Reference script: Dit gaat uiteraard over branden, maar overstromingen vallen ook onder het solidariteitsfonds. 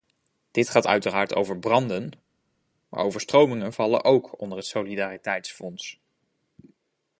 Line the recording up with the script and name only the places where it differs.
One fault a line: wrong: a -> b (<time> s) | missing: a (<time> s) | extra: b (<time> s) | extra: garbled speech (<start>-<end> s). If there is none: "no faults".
no faults